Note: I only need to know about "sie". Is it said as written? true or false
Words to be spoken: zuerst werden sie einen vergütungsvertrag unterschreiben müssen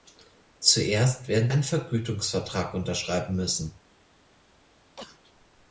false